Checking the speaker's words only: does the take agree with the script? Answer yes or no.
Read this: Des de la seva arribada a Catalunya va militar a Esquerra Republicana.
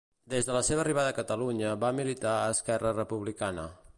yes